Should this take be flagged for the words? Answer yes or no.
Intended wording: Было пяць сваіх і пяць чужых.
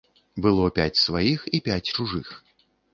no